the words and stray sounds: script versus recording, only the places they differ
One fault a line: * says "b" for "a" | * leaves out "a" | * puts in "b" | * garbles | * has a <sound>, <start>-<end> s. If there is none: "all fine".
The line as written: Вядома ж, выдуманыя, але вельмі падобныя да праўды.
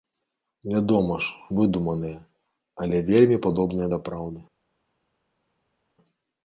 all fine